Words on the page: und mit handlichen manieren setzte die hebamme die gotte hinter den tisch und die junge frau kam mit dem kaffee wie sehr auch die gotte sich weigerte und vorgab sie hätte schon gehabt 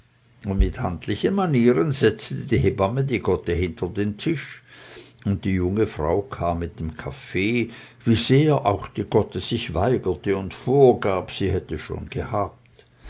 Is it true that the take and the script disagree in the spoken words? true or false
false